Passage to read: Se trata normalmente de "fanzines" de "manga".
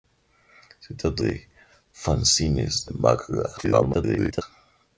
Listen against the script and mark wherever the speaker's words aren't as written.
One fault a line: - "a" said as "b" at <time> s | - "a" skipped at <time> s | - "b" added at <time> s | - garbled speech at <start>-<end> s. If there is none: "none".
- "normalmente" skipped at 1.2 s
- garbled speech at 3.6-4.4 s